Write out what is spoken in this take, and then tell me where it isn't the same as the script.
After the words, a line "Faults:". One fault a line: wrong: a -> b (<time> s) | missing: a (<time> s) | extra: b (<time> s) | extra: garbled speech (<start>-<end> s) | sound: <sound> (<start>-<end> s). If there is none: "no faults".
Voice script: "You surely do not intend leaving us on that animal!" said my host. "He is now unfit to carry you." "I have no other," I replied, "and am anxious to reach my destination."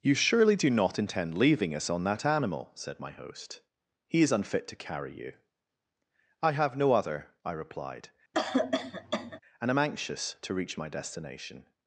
"You surely do not intend leaving us on that animal!" said my host. "He is unfit to carry you." "I have no other," I replied, "and am anxious to reach my destination."
Faults:
missing: now (4.3 s)
sound: cough (8.3-9.4 s)